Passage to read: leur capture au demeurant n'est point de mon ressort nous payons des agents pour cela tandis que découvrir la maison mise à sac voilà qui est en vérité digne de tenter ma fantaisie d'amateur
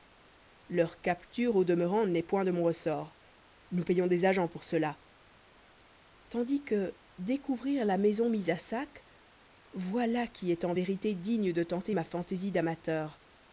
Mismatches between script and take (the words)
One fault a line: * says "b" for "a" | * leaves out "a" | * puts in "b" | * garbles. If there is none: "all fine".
all fine